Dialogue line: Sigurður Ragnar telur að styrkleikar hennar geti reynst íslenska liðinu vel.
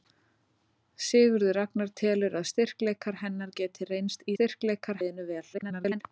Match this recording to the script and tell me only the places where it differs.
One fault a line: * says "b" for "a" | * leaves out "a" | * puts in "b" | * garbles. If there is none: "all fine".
* says "styrkleikar" for "íslenska"
* garbles